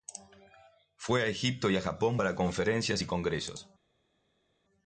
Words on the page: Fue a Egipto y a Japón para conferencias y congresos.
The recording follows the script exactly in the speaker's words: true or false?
true